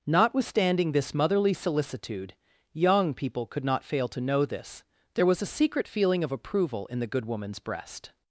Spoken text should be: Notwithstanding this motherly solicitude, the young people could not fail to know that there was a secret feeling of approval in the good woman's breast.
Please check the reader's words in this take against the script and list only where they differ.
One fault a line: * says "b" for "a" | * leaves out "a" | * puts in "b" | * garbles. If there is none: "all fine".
* leaves out "the"
* says "this" for "that"